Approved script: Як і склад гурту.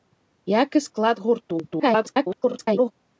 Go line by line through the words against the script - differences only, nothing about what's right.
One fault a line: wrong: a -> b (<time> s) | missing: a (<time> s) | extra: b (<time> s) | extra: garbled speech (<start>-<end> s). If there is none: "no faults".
extra: garbled speech (1.7-2.9 s)